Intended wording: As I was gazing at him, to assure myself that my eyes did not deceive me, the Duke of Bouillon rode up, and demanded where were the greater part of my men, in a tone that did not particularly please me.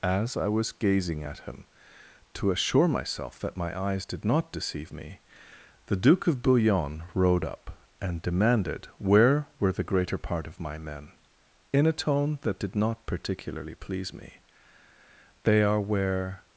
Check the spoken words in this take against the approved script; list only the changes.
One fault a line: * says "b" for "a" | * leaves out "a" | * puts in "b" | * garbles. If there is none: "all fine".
* puts in "They are where"